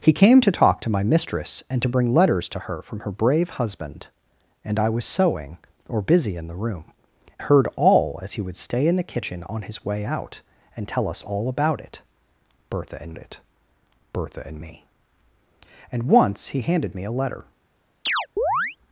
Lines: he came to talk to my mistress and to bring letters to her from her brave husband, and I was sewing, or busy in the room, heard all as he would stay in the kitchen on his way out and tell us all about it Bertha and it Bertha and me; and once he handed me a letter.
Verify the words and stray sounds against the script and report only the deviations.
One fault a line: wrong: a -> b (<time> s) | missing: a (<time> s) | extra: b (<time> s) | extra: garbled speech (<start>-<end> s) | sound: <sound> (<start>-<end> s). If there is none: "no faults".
sound: chirp (18.1-18.8 s)